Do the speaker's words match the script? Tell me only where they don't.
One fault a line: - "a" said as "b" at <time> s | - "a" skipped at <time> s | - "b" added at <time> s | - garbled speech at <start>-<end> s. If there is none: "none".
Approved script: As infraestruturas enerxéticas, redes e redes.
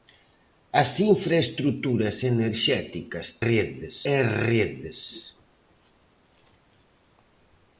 none